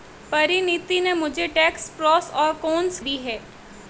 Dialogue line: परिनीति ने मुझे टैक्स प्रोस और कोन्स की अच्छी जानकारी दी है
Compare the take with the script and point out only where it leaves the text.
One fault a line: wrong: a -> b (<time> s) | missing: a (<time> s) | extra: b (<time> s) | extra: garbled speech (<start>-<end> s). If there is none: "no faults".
missing: की अच्छी जानकारी (3.0 s)